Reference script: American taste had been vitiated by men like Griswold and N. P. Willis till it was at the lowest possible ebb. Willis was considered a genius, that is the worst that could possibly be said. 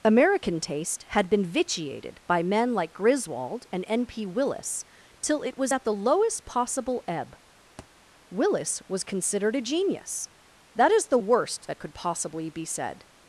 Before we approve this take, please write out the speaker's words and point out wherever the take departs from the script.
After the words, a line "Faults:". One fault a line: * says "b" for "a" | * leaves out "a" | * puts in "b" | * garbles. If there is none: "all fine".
American taste had been vitiated by men like Griswold and N. P. Willis till it was at the lowest possible ebb. Willis was considered a genius, that is the worst that could possibly be said.
Faults:
all fine